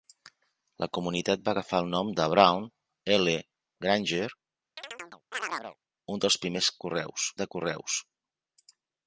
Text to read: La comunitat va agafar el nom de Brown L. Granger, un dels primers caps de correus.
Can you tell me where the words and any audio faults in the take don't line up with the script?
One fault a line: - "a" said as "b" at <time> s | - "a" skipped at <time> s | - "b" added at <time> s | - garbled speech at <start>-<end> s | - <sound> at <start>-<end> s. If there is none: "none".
- chirp at 4.8-5.8 s
- "caps" said as "correus" at 6.8 s